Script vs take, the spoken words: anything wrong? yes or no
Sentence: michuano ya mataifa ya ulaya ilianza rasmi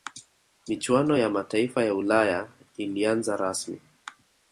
no